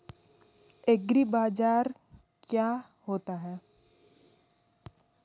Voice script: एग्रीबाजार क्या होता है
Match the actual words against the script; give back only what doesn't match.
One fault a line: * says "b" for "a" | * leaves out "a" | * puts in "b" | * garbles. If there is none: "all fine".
all fine